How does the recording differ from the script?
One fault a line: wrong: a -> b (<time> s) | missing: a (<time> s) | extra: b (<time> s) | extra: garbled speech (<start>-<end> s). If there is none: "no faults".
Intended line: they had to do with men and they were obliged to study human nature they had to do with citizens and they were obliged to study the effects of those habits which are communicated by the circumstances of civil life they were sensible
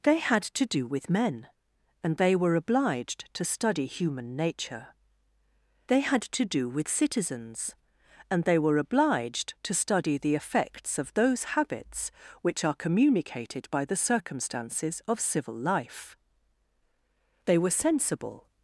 no faults